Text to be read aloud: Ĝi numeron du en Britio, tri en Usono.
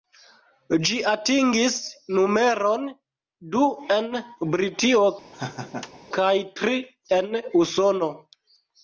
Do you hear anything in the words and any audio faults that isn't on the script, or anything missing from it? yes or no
yes